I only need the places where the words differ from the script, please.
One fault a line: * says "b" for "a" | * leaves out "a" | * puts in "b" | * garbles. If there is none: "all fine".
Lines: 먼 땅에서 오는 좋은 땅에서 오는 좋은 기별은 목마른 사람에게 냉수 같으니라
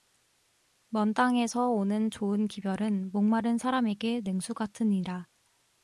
* leaves out "땅에서 오는 좋은"